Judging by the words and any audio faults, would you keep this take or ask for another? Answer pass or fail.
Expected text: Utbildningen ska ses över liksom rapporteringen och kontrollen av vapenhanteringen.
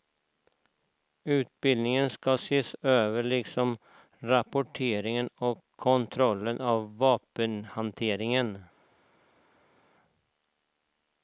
pass